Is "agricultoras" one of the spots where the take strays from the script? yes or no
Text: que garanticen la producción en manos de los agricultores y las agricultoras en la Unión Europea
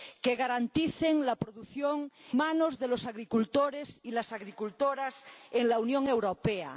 no